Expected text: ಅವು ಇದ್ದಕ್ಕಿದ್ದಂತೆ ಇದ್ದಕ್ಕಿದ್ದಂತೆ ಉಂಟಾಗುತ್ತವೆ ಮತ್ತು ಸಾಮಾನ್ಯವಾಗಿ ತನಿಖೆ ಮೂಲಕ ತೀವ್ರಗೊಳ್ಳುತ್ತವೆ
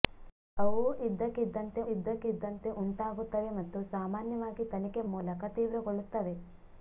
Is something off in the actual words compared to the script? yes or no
no